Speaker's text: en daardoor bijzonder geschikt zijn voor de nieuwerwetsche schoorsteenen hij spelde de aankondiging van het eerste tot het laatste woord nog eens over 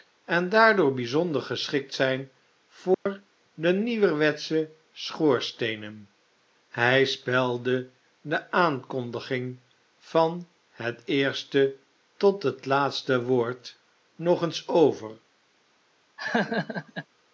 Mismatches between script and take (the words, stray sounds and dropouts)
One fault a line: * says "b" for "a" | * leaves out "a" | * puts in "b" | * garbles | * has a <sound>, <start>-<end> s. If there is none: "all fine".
* has a dropout, 2.9-3.1 s
* has a laugh, 16.2-17.1 s